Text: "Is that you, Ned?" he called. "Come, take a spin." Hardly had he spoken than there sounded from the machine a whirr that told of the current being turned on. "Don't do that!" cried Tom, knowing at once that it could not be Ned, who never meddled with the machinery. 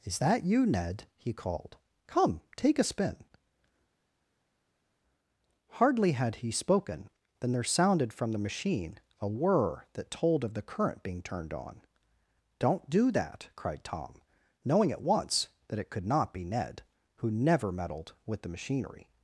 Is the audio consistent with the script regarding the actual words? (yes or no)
yes